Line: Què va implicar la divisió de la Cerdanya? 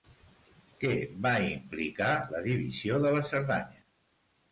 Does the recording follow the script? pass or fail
pass